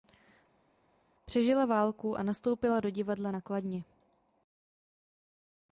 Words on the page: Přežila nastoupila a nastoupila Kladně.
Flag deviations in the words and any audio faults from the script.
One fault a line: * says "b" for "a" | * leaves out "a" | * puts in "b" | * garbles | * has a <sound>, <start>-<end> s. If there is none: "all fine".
* says "válku" for "nastoupila"
* puts in "do divadla na"